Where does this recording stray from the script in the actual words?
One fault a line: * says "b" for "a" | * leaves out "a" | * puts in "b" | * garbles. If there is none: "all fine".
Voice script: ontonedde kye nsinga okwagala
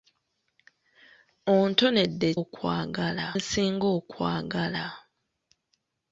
* says "okwagala" for "kye"